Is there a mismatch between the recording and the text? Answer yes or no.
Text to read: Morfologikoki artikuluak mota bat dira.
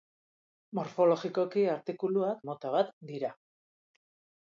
no